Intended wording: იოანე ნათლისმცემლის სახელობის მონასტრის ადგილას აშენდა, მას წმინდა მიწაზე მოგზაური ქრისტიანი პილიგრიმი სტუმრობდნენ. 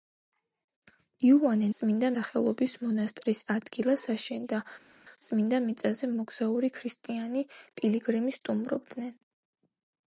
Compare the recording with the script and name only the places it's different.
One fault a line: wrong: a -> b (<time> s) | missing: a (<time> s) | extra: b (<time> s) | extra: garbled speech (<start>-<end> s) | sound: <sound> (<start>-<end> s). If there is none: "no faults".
wrong: ნათლისმცემლის -> წმინდა (1.8 s)
missing: მას (4.6 s)